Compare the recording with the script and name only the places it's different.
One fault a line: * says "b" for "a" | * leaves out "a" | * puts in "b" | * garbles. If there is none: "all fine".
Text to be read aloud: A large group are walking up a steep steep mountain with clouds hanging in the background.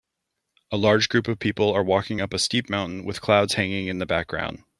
* puts in "of people"
* leaves out "steep"